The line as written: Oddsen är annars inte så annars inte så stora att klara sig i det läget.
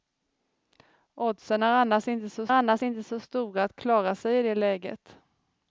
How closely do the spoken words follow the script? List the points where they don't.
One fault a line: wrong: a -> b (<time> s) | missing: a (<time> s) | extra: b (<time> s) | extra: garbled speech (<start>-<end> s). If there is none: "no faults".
no faults